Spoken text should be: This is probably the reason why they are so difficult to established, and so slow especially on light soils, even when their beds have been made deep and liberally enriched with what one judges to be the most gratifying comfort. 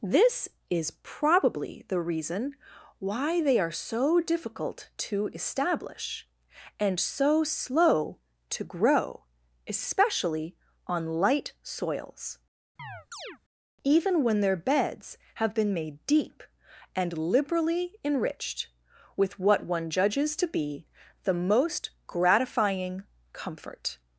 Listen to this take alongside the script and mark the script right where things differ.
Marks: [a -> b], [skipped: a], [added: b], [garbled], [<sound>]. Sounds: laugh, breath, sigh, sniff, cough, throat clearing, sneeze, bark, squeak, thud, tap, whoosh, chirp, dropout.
This is probably the reason why they are so difficult to [established, -> establish] and so slow [added: to grow] especially on light soils, [chirp] even when their beds have been made deep and liberally enriched with what one judges to be the most gratifying comfort.